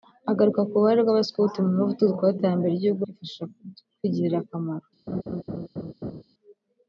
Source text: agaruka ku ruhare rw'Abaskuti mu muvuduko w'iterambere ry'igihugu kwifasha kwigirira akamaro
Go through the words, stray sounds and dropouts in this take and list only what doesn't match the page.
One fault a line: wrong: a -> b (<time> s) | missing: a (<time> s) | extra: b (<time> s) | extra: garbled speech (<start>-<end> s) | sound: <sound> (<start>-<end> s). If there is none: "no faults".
sound: laugh (5.1-6.2 s)